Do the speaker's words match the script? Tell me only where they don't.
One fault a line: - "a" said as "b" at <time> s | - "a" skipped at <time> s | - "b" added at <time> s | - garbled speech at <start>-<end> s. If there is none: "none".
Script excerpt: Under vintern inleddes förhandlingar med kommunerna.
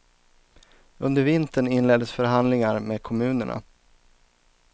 none